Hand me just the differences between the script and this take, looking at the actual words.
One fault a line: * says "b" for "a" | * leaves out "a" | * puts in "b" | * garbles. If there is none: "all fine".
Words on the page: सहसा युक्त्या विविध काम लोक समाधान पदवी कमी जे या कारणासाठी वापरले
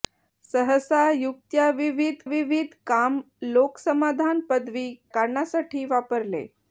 * puts in "विविध"
* leaves out "कमी जे या"